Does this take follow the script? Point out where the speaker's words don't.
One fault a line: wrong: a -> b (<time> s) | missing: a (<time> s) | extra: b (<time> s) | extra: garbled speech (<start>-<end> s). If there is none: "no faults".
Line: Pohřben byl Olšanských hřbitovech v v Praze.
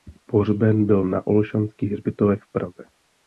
extra: na (1.0 s)
missing: v (2.5 s)